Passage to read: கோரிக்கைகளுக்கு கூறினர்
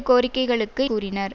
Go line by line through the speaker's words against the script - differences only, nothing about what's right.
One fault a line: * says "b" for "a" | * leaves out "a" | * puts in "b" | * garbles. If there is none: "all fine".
all fine